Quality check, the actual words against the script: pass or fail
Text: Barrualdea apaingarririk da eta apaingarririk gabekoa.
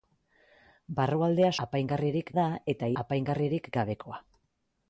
pass